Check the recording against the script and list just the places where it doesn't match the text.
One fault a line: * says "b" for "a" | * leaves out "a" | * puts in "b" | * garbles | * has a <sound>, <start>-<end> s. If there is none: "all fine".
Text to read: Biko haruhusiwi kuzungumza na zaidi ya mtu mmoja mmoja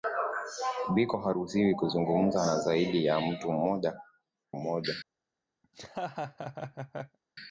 * has a laugh, 5.6-7.2 s